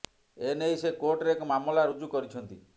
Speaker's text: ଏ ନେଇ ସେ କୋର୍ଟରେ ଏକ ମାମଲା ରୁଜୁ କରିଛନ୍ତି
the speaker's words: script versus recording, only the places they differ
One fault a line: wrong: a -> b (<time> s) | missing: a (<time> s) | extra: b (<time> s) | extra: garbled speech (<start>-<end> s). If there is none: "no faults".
no faults